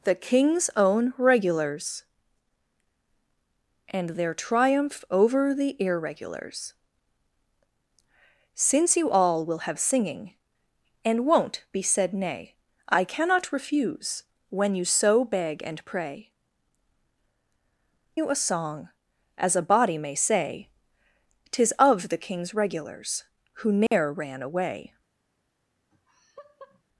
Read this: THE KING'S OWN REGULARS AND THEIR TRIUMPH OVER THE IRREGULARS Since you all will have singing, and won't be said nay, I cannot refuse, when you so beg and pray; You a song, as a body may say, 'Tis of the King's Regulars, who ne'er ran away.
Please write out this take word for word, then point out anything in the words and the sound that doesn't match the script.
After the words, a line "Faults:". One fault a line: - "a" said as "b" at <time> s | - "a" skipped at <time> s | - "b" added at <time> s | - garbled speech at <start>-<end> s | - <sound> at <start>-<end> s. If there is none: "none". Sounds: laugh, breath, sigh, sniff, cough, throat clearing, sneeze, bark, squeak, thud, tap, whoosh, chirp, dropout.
THE KING'S OWN REGULARS AND THEIR TRIUMPH OVER THE IRREGULARS Since you all will have singing, and won't be said nay, I cannot refuse, when you so beg and pray; You a song, as a body may say, 'Tis of the King's Regulars, who ne'er ran away.
Faults:
- dropout at 23.9-23.9 s
- laugh at 25.9-26.8 s